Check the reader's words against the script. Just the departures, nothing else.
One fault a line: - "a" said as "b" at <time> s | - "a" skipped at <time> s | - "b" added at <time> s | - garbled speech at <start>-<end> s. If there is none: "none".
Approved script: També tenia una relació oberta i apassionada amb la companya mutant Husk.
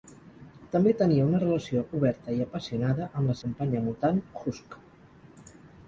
none